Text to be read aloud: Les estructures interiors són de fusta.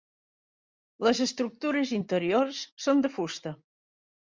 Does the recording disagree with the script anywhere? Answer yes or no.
no